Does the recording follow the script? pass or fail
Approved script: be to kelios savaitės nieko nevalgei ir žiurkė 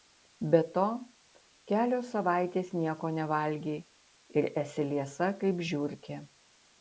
fail